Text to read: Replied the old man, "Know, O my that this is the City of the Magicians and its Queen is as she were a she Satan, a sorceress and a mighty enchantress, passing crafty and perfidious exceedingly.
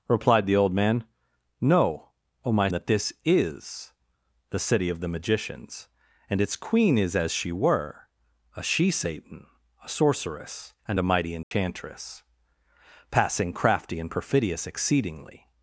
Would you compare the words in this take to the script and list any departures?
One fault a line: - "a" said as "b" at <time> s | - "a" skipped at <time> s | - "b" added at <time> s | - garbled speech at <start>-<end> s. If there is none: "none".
none